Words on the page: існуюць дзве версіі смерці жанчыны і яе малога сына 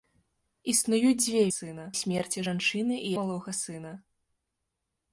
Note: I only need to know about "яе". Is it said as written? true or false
false